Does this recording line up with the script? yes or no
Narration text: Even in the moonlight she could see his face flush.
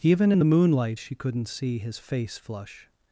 no